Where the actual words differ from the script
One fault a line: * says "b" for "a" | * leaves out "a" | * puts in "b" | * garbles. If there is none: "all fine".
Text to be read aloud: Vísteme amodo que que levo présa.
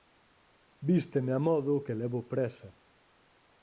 * leaves out "que"